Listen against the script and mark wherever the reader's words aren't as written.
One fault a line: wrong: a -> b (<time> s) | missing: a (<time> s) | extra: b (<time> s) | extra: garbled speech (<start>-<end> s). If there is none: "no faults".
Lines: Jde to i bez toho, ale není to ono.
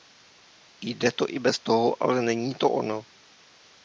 no faults